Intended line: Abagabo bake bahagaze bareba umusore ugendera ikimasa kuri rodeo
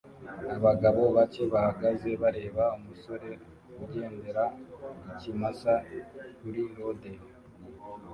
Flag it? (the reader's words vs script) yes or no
no